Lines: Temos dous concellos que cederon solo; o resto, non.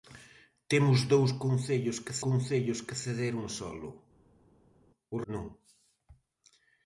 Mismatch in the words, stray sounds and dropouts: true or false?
true